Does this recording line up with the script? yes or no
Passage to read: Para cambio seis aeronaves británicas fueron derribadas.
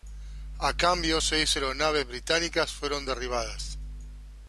no